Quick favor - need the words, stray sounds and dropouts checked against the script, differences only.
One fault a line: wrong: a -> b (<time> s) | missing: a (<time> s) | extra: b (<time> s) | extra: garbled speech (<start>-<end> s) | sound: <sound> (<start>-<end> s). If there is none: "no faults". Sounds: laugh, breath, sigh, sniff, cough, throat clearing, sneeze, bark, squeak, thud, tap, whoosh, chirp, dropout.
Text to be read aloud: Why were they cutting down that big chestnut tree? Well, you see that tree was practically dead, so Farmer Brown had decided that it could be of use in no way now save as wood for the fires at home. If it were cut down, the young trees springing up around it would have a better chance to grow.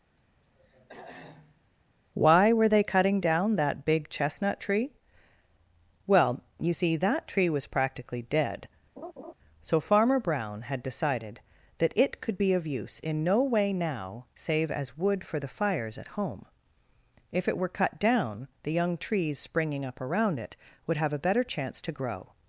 sound: throat clearing (0.2-1.6 s)
sound: laugh (9.0-9.3 s)